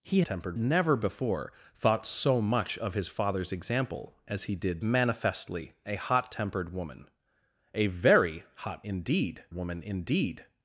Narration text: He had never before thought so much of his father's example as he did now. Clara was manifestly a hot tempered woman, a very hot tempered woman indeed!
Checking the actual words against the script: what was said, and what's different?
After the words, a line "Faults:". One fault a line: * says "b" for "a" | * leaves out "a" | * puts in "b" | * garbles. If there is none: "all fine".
He tempered never before thought so much of his father's example as he did manifestly a hot tempered woman, a very hot indeed woman indeed!
Faults:
* says "tempered" for "had"
* leaves out "now Clara was"
* says "indeed" for "tempered"